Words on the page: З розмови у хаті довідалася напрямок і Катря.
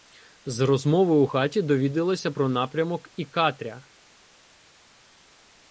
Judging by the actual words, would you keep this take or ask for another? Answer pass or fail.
fail